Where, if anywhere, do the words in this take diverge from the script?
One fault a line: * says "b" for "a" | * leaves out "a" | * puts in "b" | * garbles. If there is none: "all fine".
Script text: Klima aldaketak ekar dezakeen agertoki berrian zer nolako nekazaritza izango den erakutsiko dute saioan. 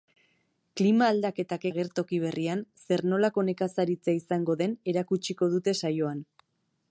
* leaves out "ekar dezakeen"